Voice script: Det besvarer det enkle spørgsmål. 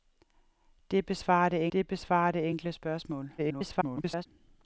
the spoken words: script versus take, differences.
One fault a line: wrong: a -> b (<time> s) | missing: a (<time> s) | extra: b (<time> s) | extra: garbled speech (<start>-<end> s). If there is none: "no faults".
extra: det besvarer det (1.7 s)
extra: garbled speech (3.4-4.3 s)